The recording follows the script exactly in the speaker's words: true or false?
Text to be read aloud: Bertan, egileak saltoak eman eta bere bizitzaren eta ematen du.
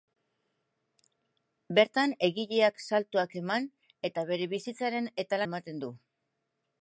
true